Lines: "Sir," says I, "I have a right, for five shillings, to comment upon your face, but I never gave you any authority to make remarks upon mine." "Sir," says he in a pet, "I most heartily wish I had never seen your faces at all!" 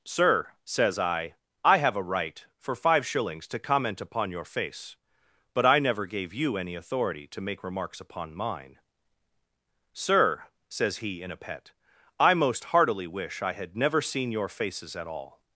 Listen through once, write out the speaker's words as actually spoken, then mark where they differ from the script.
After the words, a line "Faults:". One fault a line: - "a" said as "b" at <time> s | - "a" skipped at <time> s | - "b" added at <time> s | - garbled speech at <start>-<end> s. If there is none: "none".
"Sir," says I, "I have a right, for five shillings, to comment upon your face, but I never gave you any authority to make remarks upon mine." "Sir," says he in a pet, "I most heartily wish I had never seen your faces at all!"
Faults:
none